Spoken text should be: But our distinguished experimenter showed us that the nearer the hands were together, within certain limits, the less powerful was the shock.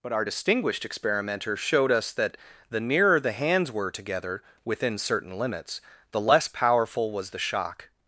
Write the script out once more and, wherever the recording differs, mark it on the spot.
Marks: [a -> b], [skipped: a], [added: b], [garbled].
But our distinguished experimenter showed us that the nearer the hands were together, within certain limits, the less powerful was the shock.